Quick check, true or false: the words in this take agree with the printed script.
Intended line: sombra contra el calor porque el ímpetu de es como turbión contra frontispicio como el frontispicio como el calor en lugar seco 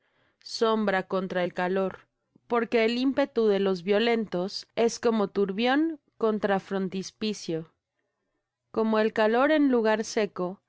false